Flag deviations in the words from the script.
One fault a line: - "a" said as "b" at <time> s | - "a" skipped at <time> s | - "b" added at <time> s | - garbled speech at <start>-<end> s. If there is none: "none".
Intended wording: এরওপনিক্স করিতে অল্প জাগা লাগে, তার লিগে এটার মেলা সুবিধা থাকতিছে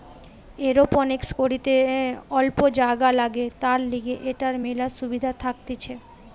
none